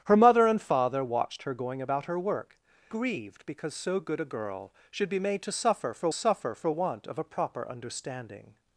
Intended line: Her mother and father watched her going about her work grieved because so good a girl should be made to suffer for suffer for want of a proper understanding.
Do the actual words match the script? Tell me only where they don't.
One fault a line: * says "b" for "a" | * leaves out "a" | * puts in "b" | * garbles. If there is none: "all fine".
all fine